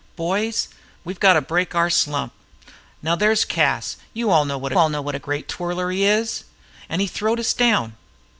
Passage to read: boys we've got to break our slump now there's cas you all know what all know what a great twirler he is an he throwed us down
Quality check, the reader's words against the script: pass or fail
pass